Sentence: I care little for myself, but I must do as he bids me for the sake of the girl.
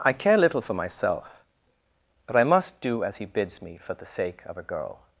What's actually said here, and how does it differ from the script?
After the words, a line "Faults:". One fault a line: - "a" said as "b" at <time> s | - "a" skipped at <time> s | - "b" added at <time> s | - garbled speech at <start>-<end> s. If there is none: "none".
I care little for myself, but I must do as he bids me for the sake of a girl.
Faults:
- "the" said as "a" at 4.6 s